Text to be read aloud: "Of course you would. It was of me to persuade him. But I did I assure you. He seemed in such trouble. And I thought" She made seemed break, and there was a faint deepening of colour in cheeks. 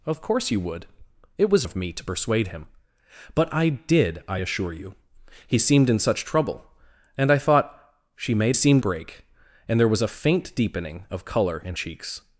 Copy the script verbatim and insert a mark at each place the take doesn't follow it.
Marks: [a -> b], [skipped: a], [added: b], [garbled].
"Of course you would. It was of me to persuade him. But I did I assure you. He seemed in such trouble. And I thought" She made seemed break, and there was a faint deepening of colour in cheeks.